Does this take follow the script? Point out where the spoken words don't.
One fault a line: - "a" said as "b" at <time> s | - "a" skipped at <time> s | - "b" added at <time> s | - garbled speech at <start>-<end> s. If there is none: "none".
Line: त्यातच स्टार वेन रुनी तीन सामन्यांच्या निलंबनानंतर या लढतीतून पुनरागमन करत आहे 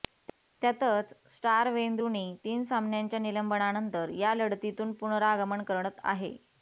none